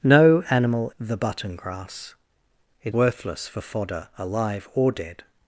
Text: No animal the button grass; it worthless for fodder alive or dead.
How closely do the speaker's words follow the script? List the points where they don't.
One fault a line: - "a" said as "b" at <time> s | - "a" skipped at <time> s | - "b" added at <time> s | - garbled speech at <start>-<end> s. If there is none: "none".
none